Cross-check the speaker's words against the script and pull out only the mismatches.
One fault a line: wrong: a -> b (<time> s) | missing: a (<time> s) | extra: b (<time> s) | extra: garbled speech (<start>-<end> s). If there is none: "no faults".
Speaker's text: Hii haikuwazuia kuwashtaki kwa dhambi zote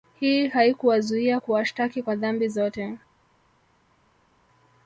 no faults